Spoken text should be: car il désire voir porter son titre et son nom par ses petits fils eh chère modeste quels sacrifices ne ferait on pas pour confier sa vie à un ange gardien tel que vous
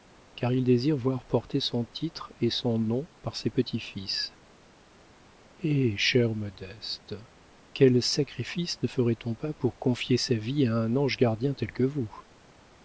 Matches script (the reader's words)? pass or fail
pass